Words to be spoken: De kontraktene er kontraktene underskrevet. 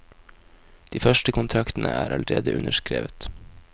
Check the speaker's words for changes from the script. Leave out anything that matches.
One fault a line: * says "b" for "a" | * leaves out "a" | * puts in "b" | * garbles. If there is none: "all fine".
* puts in "første"
* says "allerede" for "kontraktene"